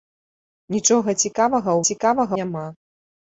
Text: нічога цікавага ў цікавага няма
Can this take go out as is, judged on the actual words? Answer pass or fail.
pass